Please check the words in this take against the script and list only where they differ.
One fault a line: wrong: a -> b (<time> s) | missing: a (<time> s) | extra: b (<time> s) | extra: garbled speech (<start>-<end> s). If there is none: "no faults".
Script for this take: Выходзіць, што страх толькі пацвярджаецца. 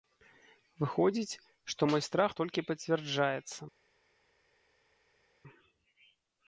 extra: мой (1.9 s)